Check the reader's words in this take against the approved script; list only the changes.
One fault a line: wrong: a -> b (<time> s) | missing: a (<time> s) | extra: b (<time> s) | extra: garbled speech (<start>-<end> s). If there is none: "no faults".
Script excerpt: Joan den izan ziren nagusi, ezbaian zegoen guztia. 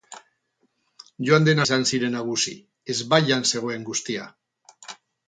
no faults